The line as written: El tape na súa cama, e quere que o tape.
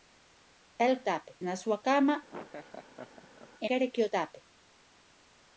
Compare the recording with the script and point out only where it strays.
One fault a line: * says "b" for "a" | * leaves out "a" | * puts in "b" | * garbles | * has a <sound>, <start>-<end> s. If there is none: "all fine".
* has a laugh, 2.3-3.5 s